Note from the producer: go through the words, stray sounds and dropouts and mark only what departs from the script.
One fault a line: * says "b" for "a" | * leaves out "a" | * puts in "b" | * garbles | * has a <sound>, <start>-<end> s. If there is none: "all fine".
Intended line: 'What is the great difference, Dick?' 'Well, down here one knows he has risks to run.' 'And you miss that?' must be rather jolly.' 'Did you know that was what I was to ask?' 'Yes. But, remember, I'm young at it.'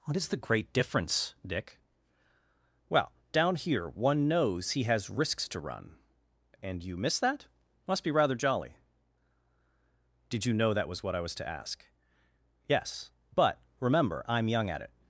all fine